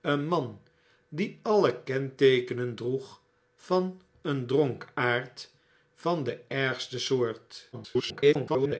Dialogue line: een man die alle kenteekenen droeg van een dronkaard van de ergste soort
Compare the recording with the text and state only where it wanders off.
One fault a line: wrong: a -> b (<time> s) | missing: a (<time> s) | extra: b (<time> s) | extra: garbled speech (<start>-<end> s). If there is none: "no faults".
extra: garbled speech (7.7-8.8 s)